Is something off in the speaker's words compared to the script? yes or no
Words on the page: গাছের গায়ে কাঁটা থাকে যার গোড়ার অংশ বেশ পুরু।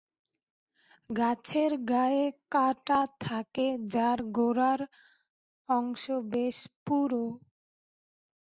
no